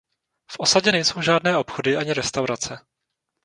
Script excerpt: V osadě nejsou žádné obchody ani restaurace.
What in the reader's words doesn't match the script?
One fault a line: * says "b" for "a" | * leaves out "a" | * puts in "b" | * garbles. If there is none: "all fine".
all fine